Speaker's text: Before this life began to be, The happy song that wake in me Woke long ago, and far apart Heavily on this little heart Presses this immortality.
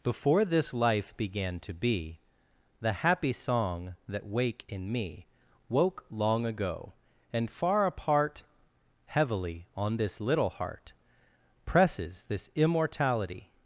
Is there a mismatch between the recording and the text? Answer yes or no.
no